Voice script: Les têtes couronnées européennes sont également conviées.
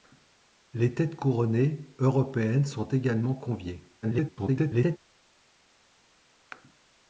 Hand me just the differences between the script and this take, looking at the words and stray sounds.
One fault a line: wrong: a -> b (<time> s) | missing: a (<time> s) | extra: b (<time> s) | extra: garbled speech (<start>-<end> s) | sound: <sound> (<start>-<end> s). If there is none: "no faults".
extra: garbled speech (4.0-5.0 s)